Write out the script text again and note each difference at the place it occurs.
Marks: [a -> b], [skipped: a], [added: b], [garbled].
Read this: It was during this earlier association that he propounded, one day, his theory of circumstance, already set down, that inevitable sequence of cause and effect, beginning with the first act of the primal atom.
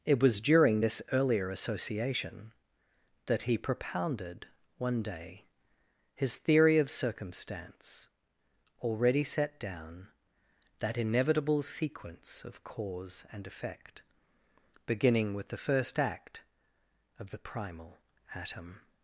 It was during this earlier association that he propounded, one day, his theory of circumstance, already set down, that inevitable sequence of cause and effect, beginning with the first act of the primal atom.